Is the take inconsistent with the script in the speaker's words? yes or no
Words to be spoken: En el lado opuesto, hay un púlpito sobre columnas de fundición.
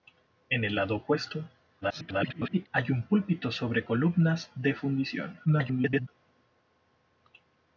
yes